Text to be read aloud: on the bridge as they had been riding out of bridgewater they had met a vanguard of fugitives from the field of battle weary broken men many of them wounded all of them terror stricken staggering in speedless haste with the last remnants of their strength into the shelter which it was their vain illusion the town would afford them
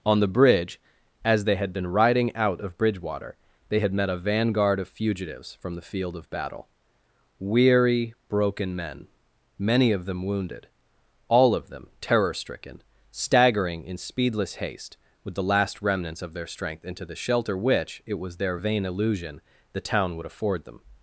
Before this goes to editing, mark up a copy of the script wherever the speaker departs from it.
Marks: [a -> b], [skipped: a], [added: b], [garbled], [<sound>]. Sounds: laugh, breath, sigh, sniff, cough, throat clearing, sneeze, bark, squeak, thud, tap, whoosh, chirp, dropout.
on the bridge as they had been riding out of bridgewater they had met a vanguard of fugitives from the field of battle weary broken men many of them wounded all of them terror stricken staggering in speedless haste with the last remnants of their strength into the shelter which it was their vain illusion the town would afford them